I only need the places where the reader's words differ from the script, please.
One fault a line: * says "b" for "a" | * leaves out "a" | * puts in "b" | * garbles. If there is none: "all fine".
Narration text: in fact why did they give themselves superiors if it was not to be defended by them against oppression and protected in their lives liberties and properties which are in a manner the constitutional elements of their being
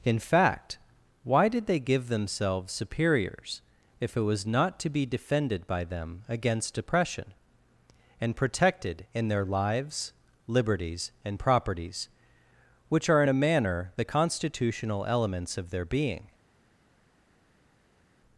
all fine